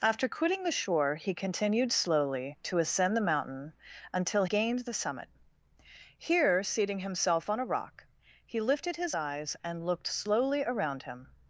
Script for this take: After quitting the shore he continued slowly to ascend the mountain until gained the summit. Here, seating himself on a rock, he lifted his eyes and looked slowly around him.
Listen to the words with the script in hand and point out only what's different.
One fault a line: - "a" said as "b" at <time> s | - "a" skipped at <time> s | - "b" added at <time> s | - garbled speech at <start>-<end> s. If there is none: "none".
none